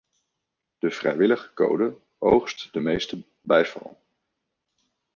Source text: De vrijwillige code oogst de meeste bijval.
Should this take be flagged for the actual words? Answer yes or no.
no